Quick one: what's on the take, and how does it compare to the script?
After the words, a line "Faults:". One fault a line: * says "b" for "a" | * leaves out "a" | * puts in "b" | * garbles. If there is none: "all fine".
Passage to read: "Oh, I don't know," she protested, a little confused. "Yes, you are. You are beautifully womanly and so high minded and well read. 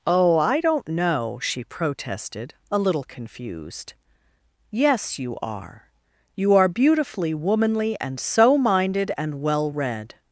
"Oh, I don't know," she protested, a little confused. "Yes, you are. You are beautifully womanly and so minded and well read.
Faults:
* leaves out "high"